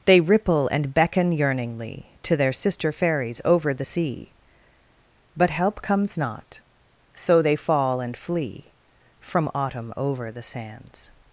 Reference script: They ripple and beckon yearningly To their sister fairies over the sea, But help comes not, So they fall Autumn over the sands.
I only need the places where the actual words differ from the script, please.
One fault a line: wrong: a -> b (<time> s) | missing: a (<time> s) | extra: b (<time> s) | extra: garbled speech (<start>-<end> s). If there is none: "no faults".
extra: and flee From (8.0 s)